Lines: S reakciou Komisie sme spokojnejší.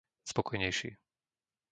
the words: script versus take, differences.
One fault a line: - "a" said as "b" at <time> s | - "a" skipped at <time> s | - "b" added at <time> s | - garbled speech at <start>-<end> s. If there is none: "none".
- "reakciou Komisie sme" skipped at 0.3 s